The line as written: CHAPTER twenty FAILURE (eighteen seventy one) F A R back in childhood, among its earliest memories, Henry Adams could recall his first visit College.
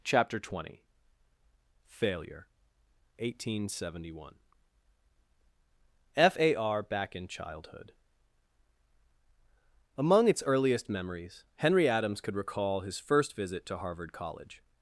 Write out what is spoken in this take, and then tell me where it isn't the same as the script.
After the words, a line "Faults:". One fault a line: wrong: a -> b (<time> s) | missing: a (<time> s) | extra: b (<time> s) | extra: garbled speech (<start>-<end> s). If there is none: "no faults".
CHAPTER twenty FAILURE (eighteen seventy one) F A R back in childhood, among its earliest memories, Henry Adams could recall his first visit to Harvard College.
Faults:
extra: to Harvard (13.7 s)